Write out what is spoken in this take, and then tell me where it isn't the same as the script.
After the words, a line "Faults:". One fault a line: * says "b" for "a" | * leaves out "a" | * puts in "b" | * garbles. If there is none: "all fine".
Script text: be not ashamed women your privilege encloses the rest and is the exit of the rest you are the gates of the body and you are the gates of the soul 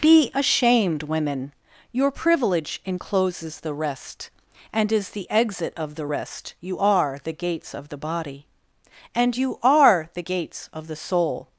be ashamed women your privilege encloses the rest and is the exit of the rest you are the gates of the body and you are the gates of the soul
Faults:
* leaves out "not"